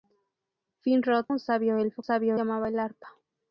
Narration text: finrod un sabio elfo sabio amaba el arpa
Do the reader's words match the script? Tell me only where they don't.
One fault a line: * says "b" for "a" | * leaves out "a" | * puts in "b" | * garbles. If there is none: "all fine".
all fine